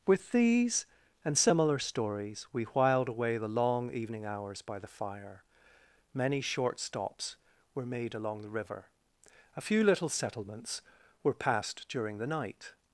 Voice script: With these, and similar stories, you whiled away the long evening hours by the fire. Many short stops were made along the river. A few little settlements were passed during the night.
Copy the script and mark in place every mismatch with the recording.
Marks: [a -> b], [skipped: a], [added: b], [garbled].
With these, and similar stories, [you -> we] whiled away the long evening hours by the fire. Many short stops were made along the river. A few little settlements were passed during the night.